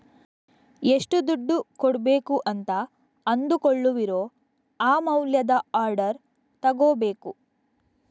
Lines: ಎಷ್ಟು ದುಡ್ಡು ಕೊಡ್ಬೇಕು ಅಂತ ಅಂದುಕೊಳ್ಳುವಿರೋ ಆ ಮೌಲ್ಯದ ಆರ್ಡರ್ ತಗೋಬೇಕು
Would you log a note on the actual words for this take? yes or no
no